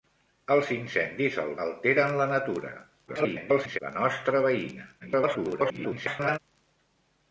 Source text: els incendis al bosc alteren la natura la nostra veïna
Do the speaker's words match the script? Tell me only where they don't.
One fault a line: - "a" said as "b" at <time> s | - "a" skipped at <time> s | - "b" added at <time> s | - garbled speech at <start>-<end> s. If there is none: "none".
- "bosc" skipped at 1.5 s
- garbled speech at 3.1-3.8 s
- garbled speech at 5.0-6.4 s